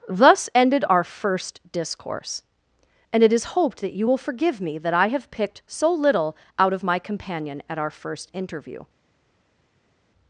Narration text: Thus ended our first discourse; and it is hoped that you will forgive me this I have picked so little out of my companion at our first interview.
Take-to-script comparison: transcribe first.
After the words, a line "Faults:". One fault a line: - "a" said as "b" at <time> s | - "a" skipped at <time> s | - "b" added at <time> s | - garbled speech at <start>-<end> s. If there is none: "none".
Thus ended our first discourse; and it is hoped that you will forgive me that I have picked so little out of my companion at our first interview.
Faults:
- "this" said as "that" at 4.8 s